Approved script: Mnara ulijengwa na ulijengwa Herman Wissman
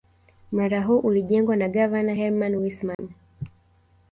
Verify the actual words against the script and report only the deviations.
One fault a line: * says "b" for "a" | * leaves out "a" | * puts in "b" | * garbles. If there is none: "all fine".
* puts in "huu"
* says "gavana" for "ulijengwa"